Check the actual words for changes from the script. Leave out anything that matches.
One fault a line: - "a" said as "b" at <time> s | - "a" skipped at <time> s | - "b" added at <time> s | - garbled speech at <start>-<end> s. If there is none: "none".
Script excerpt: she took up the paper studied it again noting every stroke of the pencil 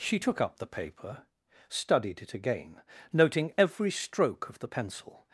none